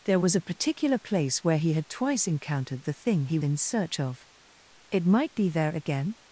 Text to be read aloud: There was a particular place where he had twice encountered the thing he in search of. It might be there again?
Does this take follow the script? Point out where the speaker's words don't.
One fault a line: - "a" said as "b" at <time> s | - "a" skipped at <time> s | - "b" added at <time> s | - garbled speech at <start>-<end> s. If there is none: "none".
none